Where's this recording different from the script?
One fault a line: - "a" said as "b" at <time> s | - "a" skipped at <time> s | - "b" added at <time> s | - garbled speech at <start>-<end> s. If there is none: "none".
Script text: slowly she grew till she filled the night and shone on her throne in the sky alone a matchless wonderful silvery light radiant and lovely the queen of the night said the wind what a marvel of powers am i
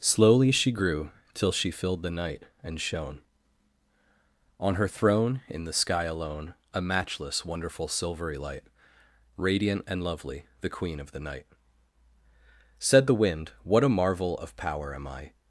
- "powers" said as "power" at 14.6 s